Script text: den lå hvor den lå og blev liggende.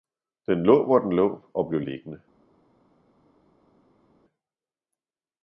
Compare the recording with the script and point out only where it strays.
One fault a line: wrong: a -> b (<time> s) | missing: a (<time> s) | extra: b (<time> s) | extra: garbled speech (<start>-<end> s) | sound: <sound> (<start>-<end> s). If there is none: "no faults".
no faults